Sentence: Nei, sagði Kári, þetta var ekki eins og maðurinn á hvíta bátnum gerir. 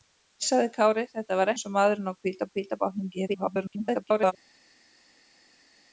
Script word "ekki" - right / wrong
wrong